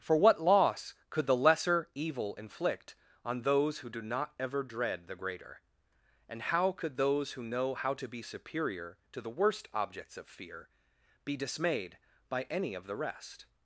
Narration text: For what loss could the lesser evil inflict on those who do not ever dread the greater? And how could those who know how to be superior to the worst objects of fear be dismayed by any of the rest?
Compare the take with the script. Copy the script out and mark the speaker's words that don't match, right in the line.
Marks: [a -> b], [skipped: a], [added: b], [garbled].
For what loss could the lesser evil inflict on those who do not ever dread the greater? And how could those who know how to be superior to the worst objects of fear be dismayed by any of the rest?